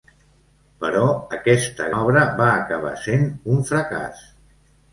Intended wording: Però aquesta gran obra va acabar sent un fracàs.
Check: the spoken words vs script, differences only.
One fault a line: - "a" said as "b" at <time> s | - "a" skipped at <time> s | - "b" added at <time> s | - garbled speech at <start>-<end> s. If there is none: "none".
- "gran" skipped at 1.9 s